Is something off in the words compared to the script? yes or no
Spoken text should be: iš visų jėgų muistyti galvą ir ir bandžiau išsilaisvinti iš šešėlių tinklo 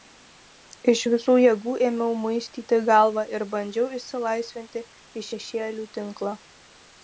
yes